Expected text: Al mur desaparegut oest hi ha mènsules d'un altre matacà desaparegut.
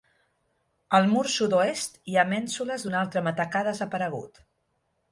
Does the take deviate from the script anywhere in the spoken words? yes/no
yes